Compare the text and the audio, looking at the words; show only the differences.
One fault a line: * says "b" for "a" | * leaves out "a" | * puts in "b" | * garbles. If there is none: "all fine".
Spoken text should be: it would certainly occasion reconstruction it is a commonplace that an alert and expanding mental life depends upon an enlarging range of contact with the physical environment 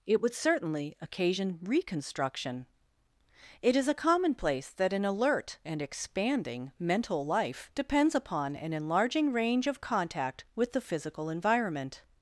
all fine